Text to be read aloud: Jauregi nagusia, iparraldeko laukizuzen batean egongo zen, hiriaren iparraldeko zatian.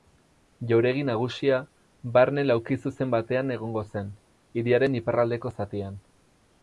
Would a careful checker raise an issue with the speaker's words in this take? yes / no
yes